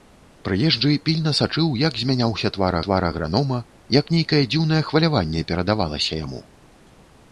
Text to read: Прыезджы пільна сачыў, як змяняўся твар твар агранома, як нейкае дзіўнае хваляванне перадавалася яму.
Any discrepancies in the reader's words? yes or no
no